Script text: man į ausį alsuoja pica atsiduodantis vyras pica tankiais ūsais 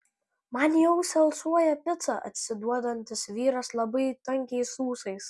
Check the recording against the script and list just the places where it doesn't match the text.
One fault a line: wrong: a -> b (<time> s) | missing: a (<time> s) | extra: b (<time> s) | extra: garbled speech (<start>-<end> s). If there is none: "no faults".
wrong: pica -> labai (3.8 s)